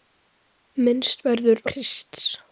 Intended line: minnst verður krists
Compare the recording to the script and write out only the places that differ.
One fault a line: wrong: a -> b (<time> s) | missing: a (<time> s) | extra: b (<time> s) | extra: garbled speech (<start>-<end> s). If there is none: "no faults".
no faults